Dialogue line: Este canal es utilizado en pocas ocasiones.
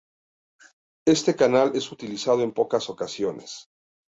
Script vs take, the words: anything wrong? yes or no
no